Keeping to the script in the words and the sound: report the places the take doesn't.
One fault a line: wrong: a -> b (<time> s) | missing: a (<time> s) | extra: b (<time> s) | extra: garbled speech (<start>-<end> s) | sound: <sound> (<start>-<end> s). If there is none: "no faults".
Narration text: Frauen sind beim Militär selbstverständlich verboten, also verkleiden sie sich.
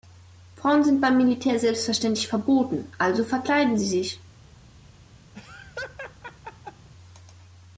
sound: laugh (5.3-6.9 s)